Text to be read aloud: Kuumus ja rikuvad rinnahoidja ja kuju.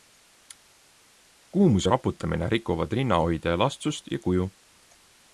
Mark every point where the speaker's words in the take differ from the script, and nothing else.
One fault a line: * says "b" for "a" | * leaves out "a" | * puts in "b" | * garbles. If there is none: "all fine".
* puts in "raputamine"
* puts in "elastsust"